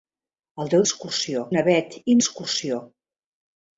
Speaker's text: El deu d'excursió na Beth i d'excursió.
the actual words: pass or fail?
pass